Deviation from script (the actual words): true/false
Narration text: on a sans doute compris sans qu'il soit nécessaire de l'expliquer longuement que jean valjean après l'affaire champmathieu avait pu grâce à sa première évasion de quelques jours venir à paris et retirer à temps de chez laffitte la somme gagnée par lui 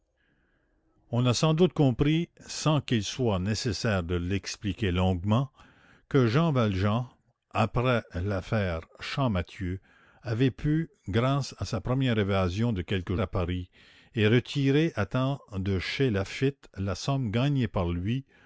true